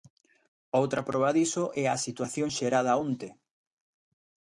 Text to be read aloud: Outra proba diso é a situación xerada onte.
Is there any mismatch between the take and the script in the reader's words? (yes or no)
no